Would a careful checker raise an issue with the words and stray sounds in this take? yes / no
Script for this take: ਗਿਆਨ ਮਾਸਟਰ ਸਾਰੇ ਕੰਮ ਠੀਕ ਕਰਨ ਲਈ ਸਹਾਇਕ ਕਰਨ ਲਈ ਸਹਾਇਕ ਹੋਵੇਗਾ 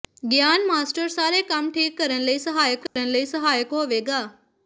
yes